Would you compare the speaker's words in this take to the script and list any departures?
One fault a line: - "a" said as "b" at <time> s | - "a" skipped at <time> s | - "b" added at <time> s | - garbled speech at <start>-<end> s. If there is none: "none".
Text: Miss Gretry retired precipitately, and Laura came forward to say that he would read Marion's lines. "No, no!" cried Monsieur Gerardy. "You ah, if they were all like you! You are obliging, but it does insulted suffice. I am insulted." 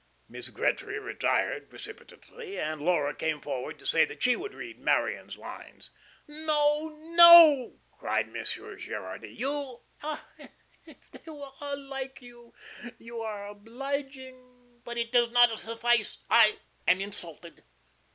- "he" said as "she" at 4.2 s
- "insulted" said as "not" at 15.3 s